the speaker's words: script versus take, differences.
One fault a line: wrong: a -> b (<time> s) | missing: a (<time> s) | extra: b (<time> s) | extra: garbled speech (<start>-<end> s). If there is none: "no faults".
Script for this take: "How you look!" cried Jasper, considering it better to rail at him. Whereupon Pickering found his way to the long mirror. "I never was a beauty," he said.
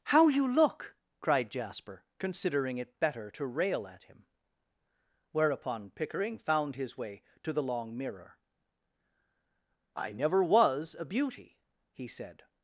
no faults